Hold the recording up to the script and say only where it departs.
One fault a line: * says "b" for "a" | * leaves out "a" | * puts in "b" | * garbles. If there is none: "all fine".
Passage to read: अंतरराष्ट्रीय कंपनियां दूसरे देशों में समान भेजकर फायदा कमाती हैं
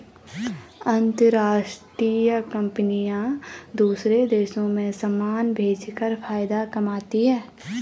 all fine